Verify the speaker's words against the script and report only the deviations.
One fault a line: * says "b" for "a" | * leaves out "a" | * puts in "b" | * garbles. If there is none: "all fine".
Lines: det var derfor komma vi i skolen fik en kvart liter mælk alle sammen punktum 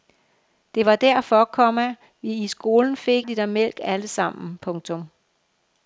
* leaves out "en kvart"